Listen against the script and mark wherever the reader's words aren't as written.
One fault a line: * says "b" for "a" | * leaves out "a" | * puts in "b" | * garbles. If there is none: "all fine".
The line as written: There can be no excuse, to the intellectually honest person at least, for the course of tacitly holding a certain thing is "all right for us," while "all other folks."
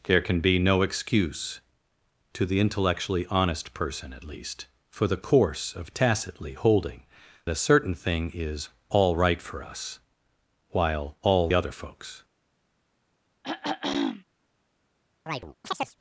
all fine